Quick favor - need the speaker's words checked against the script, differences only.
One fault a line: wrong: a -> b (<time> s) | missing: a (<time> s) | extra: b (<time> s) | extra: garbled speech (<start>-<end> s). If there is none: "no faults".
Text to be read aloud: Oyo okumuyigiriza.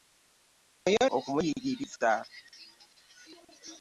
no faults